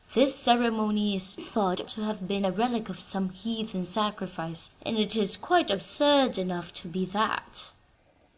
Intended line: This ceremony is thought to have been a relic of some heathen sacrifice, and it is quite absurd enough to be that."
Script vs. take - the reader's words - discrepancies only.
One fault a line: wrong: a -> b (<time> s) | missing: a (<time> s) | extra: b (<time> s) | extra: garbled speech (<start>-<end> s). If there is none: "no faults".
no faults